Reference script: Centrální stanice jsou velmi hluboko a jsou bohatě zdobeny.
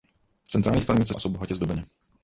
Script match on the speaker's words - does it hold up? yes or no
no